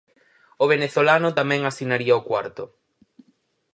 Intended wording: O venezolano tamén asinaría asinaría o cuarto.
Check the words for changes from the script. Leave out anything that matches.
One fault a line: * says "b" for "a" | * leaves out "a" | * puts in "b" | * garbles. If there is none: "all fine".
* leaves out "asinaría"